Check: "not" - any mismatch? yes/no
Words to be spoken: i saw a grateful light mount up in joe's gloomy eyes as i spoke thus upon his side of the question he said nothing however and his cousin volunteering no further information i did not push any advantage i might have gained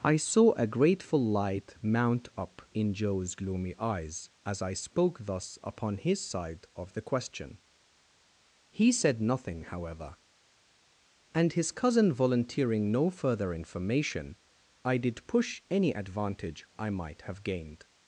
yes